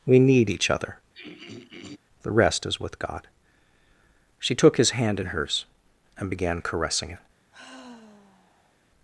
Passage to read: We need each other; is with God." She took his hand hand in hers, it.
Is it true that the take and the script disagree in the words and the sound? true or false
true